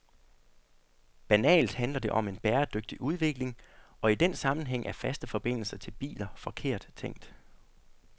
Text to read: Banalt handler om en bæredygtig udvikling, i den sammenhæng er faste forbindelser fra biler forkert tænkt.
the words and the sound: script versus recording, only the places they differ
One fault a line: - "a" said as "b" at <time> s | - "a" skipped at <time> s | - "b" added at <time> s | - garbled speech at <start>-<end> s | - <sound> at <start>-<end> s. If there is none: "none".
- "det" added at 2.0 s
- "og" added at 4.0 s
- "fra" said as "til" at 5.8 s